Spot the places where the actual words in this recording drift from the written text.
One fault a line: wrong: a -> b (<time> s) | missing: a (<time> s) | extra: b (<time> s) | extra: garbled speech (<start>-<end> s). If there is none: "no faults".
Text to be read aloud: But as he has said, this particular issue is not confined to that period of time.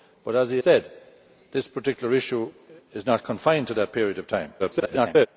missing: has (0.6 s)
extra: garbled speech (4.6-5.3 s)